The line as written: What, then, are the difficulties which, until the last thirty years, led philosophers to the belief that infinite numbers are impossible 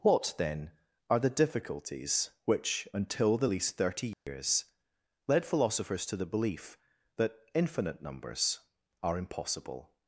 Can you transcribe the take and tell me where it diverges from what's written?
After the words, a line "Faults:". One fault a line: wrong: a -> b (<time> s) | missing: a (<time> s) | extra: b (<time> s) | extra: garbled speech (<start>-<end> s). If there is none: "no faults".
What, then, are the difficulties which, until the least thirty years, led philosophers to the belief that infinite numbers are impossible
Faults:
wrong: last -> least (3.4 s)